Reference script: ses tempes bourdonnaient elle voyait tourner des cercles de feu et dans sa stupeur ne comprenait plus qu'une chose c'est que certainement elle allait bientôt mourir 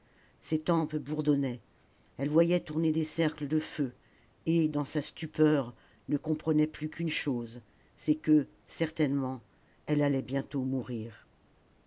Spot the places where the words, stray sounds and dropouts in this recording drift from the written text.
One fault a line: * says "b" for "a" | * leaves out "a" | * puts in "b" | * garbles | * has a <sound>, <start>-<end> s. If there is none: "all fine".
all fine